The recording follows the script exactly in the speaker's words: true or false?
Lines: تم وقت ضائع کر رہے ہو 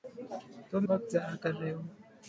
true